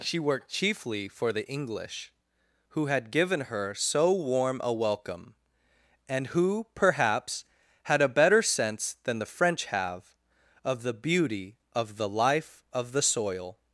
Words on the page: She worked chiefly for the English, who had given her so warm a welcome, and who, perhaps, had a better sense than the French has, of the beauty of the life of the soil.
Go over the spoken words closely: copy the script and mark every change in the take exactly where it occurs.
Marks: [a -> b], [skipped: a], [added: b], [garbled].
She worked chiefly for the English, who had given her so warm a welcome, and who, perhaps, had a better sense than the French [has, -> have] of the beauty of the life of the soil.